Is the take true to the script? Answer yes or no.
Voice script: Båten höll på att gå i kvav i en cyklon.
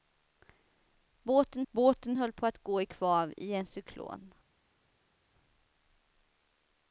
no